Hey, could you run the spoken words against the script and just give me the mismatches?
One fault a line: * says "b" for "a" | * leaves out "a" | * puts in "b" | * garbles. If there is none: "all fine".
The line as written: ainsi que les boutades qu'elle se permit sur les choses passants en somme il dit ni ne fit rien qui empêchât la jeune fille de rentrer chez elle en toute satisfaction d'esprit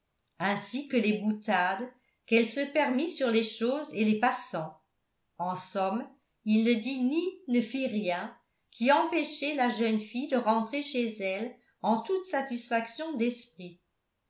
* puts in "et les"
* puts in "ne"